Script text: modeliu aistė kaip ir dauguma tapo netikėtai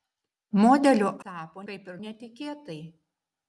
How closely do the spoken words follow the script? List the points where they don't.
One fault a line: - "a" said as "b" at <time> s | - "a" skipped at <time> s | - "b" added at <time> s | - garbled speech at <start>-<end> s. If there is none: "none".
- "aistė" said as "tapo" at 1.3 s
- "dauguma tapo" skipped at 2.0 s